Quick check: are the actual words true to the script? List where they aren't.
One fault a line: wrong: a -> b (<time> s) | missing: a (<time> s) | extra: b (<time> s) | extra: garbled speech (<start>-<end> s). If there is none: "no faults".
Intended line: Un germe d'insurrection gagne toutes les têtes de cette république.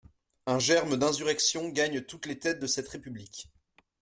no faults